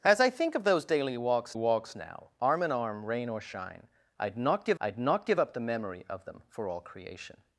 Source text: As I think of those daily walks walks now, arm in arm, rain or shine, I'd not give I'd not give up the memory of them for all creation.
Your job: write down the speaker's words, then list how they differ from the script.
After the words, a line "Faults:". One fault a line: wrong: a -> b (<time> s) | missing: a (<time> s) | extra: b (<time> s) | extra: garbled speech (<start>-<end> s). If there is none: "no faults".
As I think of those daily walks walks now, arm in arm, rain or shine, I'd not give I'd not give up the memory of them for all creation.
Faults:
no faults